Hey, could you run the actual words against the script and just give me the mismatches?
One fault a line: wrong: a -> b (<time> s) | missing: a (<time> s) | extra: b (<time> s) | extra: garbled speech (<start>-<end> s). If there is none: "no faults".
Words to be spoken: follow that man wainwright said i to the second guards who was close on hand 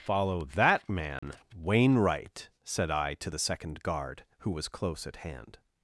wrong: guards -> guard (3.8 s)
wrong: on -> at (5.1 s)